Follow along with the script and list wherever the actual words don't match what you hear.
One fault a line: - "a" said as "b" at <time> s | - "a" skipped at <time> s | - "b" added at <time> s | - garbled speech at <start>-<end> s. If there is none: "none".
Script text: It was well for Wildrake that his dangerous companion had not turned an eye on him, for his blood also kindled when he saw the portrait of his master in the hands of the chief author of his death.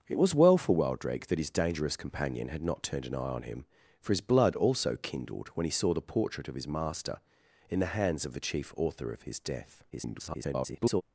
- garbled speech at 9.9-11.0 s